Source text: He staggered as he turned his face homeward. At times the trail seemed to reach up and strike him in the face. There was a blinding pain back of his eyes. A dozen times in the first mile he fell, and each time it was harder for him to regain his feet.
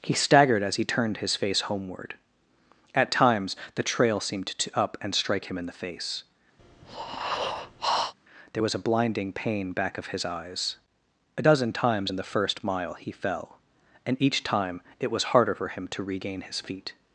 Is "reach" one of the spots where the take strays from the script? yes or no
yes